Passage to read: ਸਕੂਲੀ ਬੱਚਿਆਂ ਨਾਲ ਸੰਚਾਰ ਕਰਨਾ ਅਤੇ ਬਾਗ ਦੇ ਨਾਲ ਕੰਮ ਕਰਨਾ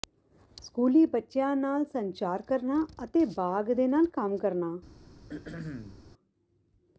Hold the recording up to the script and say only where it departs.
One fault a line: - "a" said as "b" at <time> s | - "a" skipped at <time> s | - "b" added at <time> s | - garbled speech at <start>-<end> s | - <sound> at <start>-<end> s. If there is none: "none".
- throat clearing at 5.3-6.0 s